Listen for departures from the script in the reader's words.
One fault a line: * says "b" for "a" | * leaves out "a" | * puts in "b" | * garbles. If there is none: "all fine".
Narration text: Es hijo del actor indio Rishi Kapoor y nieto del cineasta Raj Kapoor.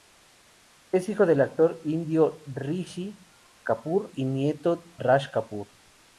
* leaves out "del cineasta"